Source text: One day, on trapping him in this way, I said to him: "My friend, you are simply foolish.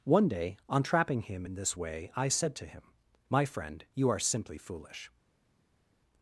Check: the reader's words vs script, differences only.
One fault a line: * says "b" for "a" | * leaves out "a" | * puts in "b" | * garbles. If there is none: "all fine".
all fine